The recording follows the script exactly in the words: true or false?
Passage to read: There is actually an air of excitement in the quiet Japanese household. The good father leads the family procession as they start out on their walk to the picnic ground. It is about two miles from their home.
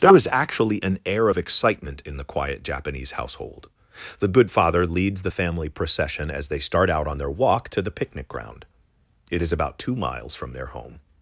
true